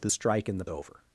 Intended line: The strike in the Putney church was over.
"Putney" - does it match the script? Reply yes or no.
no